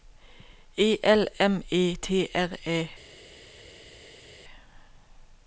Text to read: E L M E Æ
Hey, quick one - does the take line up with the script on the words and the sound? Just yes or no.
no